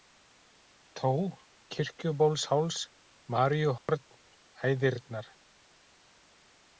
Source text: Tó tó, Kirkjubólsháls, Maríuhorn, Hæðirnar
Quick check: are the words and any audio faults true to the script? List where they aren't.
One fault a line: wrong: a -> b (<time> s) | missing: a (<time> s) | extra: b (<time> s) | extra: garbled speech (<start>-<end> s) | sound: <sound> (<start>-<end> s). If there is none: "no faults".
missing: tó (1.1 s)
sound: dropout (3.8-3.9 s)